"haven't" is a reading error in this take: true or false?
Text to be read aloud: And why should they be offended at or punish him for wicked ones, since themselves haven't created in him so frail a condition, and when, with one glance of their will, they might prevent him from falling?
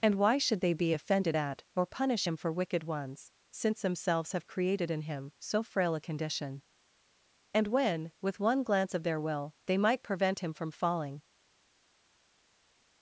true